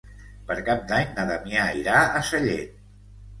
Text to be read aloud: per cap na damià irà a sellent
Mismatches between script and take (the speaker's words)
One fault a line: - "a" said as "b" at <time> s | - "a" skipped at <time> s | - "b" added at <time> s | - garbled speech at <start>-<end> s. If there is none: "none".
- "d'any" added at 0.9 s